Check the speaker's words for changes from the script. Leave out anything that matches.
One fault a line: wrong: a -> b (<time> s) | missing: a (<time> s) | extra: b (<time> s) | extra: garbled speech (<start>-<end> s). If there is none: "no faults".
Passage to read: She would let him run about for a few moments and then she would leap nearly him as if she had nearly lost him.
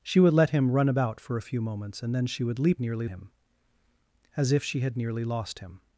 no faults